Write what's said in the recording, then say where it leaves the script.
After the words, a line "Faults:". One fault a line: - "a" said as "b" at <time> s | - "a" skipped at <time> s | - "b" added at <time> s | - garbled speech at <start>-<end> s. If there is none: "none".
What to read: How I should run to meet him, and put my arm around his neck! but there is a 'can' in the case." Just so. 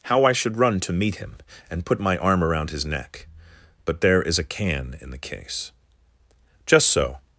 How I should run to meet him, and put my arm around his neck! but there is a 'can' in the case." Just so.
Faults:
none